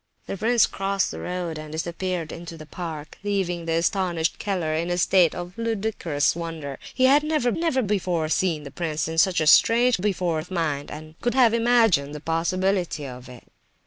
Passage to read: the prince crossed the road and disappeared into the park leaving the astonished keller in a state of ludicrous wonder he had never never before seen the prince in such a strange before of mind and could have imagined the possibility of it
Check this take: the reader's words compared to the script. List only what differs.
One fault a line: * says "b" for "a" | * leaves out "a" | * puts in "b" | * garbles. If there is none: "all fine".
all fine